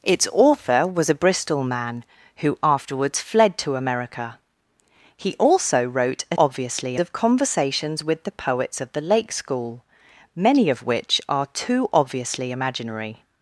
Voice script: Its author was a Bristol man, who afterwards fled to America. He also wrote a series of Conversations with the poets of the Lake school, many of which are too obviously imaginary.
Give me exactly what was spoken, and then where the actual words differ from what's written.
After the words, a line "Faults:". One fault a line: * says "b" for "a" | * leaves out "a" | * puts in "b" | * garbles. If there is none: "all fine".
Its author was a Bristol man, who afterwards fled to America. He also wrote a obviously of Conversations with the poets of the Lake school, many of which are too obviously imaginary.
Faults:
* says "obviously" for "series"